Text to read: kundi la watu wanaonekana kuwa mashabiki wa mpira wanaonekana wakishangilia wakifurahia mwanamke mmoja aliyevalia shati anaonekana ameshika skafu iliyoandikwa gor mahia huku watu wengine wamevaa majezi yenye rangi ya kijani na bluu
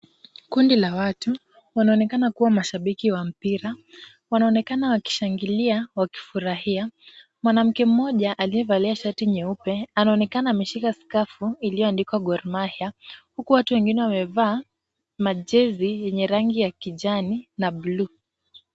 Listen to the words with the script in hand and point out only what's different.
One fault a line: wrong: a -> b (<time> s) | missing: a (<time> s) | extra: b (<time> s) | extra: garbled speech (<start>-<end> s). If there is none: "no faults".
extra: nyeupe (9.2 s)